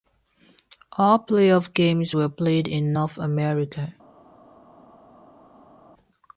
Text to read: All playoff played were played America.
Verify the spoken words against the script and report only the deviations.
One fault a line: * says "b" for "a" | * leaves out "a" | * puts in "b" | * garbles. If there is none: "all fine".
* says "games" for "played"
* puts in "in North"